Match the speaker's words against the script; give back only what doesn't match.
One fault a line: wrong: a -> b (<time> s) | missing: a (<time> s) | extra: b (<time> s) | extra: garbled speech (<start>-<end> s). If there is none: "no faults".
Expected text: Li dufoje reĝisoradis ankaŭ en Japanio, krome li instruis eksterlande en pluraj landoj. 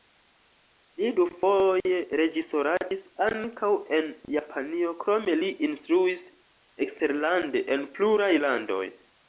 no faults